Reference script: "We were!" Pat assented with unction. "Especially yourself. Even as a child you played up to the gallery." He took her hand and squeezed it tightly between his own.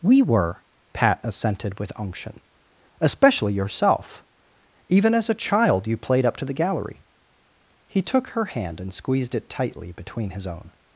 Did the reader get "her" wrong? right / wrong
right